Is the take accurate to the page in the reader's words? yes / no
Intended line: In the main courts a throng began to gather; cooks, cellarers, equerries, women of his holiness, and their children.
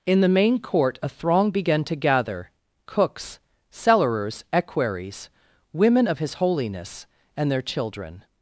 no